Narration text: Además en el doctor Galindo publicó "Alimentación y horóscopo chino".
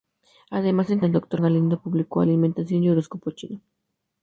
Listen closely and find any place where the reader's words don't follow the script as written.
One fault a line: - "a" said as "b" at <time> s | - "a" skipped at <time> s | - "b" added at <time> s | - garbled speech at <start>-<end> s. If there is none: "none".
none